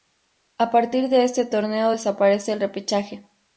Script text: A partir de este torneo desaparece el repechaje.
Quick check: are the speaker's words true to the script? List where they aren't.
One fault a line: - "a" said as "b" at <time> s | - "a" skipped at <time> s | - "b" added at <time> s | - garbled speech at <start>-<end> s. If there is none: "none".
none